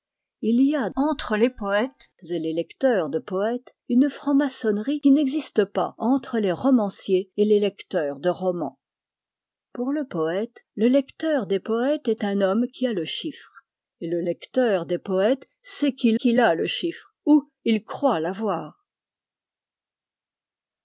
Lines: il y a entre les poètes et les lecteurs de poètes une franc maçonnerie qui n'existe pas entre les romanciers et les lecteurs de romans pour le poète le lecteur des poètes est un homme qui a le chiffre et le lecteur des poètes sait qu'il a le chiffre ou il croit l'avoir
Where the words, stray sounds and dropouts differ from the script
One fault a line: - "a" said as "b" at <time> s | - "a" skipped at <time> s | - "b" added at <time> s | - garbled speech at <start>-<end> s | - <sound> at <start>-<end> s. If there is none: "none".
- "qu'il" added at 16.1 s